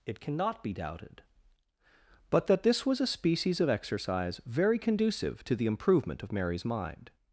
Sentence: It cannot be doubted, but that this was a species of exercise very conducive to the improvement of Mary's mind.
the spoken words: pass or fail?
pass